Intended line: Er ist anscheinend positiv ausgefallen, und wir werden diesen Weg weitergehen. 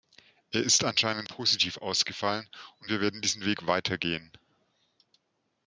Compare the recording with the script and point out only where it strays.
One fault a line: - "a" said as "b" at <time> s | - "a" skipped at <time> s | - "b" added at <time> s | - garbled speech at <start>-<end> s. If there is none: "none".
none